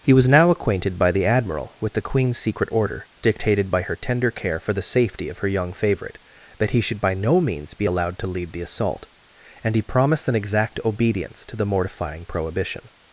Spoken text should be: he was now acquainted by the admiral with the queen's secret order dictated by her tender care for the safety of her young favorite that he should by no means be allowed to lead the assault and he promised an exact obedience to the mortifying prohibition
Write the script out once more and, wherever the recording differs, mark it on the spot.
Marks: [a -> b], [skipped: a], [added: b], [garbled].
he was now acquainted by the admiral with the queen's secret order dictated by her tender care for the safety of her young favorite that he should by no means be allowed to lead the assault and he promised an exact obedience to the mortifying prohibition